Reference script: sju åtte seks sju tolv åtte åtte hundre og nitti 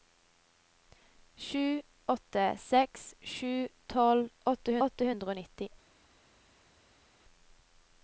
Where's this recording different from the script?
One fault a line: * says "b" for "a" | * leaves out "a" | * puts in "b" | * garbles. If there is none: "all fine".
all fine